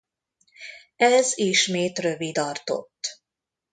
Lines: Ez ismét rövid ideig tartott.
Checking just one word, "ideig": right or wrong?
wrong